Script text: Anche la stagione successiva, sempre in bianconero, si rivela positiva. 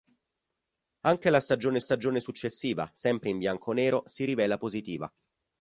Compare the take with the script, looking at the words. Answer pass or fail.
fail